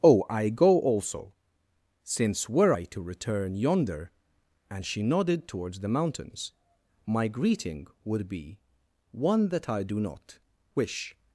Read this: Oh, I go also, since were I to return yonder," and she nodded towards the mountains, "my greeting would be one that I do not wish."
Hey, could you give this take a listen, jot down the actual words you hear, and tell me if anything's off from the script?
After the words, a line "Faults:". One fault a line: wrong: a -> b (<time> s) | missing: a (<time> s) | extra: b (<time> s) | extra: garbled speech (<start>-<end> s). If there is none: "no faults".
Oh, I go also, since were I to return yonder," and she nodded towards the mountains, "my greeting would be one that I do not wish."
Faults:
no faults